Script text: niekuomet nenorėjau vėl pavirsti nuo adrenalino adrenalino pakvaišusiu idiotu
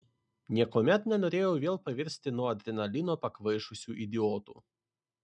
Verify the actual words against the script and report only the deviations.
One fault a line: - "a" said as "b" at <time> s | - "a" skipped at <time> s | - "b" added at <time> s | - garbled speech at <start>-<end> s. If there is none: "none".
- "adrenalino" skipped at 3.2 s